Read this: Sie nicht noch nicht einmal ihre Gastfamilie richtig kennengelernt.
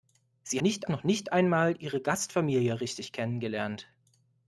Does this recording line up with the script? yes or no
yes